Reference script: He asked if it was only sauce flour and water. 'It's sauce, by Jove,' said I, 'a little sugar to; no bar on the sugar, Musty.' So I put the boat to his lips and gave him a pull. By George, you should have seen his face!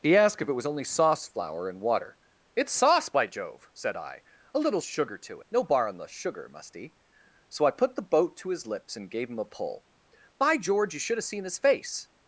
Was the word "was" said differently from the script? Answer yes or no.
no